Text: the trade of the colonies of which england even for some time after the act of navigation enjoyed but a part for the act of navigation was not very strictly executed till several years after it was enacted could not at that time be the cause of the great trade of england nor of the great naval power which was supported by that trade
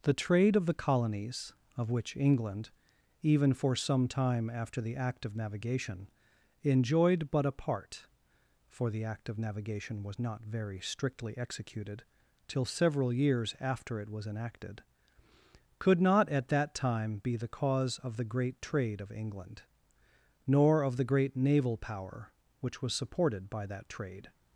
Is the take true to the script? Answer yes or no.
yes